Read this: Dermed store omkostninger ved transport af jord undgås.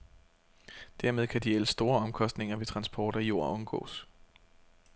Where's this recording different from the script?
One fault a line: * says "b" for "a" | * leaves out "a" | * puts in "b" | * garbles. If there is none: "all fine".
* puts in "kan de ellers"